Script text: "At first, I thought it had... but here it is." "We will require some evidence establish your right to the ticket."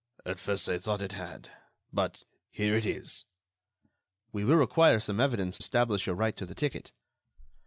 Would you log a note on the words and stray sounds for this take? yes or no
no